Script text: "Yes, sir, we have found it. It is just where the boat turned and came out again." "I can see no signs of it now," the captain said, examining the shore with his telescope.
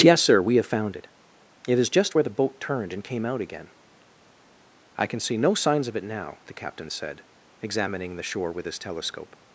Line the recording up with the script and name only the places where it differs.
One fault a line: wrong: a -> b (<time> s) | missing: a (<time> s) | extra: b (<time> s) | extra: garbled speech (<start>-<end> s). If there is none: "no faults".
no faults